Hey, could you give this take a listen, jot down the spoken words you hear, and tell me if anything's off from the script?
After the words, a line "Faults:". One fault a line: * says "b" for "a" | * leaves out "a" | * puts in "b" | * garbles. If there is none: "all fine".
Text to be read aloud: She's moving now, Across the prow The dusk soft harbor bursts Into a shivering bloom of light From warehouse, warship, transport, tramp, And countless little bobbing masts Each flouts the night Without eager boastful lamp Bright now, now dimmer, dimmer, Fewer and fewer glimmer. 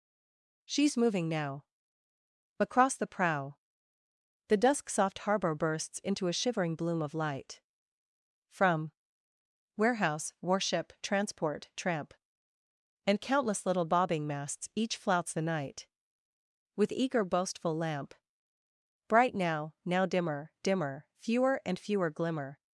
She's moving now, Across the prow The dusk soft harbor bursts Into a shivering bloom of light From warehouse, warship, transport, tramp, And countless little bobbing masts Each flouts the night With eager boastful lamp Bright now, now dimmer, dimmer, Fewer and fewer glimmer.
Faults:
* says "With" for "Without"